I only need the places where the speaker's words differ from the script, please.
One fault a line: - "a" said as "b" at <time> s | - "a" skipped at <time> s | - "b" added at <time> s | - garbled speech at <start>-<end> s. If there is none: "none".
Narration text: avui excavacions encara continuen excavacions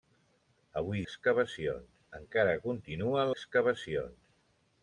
none